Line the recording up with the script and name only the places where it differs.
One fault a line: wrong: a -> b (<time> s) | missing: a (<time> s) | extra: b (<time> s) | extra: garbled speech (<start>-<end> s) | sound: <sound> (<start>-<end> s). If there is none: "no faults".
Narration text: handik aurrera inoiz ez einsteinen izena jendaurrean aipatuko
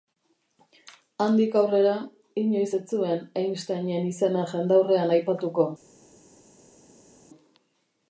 extra: zuen (2.9 s)